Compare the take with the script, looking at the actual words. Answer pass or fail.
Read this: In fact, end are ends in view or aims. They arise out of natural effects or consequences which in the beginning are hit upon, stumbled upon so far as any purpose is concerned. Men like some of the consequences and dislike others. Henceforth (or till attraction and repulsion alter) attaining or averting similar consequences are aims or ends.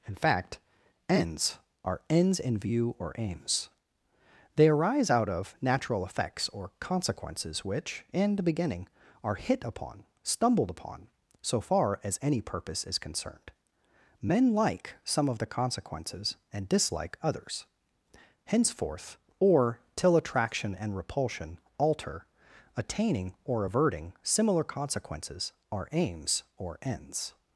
fail